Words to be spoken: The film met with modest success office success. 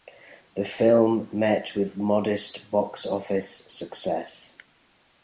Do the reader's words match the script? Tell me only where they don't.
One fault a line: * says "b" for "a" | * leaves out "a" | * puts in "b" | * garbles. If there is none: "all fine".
* says "box" for "success"